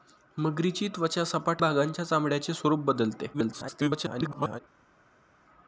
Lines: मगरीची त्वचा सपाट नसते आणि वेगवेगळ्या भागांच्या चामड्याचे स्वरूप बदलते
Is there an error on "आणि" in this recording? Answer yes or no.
yes